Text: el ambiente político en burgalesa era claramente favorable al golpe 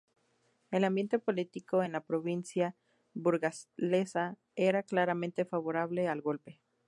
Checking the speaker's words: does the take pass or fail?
fail